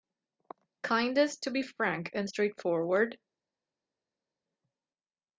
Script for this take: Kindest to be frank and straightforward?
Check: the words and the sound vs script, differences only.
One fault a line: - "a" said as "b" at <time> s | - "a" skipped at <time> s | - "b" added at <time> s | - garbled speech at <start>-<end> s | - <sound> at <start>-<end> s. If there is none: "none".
none